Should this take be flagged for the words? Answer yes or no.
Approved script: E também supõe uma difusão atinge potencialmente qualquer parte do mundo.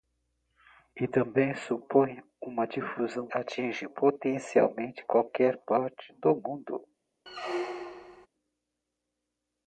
no